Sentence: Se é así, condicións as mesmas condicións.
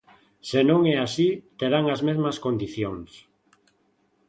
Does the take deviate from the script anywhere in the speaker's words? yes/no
yes